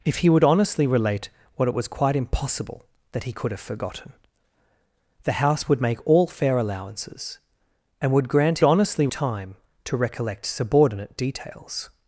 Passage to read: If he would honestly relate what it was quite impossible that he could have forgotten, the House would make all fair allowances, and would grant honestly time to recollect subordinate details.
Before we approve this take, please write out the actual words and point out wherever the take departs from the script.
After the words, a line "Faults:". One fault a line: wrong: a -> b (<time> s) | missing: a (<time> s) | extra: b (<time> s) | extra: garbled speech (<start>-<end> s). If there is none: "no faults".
If he would honestly relate what it was quite impossible that he could have forgotten, the House would make all fair allowances, and would grant honestly time to recollect subordinate details.
Faults:
no faults